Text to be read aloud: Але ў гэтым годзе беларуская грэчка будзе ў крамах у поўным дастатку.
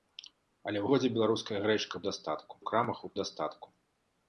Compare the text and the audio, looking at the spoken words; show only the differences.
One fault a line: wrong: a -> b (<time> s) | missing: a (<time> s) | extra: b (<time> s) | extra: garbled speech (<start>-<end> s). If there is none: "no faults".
missing: гэтым (0.9 s)
wrong: будзе -> дастатку (2.1 s)
missing: поўным (3.1 s)